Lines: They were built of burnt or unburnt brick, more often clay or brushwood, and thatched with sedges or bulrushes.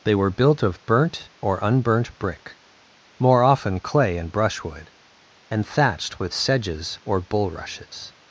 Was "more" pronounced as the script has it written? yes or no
yes